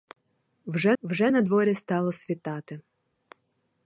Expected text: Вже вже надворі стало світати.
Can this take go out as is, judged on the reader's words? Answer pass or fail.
pass